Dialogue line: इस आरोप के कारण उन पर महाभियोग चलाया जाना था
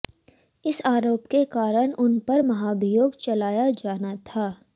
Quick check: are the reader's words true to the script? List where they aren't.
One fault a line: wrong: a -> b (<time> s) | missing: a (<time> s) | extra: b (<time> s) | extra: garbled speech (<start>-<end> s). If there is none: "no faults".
no faults